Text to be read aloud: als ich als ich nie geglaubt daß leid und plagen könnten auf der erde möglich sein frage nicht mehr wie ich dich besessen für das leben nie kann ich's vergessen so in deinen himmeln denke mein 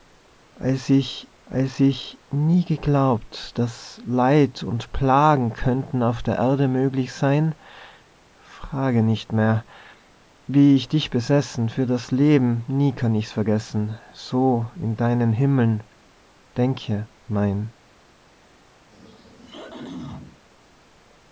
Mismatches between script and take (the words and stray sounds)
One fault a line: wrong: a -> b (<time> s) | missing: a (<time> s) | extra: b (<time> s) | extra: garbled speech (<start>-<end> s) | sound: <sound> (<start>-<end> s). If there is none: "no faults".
sound: throat clearing (18.9-20.5 s)